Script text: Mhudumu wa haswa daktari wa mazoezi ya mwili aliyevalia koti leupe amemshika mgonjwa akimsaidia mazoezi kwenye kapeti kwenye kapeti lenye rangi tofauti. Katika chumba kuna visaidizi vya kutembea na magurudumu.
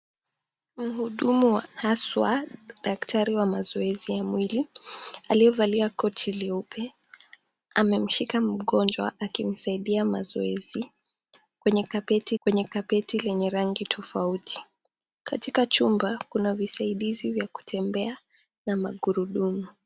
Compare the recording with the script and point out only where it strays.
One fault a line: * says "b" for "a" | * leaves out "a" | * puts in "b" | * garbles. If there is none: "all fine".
all fine